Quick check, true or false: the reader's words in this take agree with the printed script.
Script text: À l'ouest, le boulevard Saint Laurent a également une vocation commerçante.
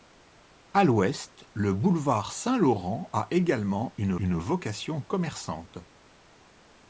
false